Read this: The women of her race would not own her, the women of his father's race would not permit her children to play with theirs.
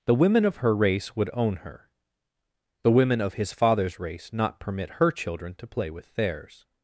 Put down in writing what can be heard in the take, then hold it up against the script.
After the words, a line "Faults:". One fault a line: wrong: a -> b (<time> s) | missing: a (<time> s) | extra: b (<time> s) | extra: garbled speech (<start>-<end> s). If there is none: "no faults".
The women of her race would own her, the women of his father's race not permit her children to play with theirs.
Faults:
missing: not (1.3 s)
missing: would (4.3 s)